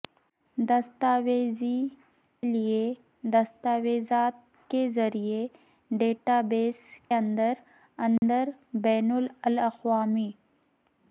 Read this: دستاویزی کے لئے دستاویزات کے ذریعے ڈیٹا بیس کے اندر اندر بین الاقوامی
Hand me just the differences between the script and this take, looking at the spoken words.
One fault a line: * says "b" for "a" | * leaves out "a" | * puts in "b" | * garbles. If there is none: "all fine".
* leaves out "کے"
* leaves out "کے"